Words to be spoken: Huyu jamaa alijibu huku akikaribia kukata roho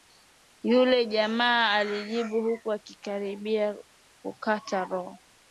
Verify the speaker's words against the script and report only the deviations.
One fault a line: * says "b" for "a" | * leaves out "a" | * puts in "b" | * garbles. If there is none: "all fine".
* says "Yule" for "Huyu"